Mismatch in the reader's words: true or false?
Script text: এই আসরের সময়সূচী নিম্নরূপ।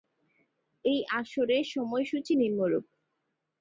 false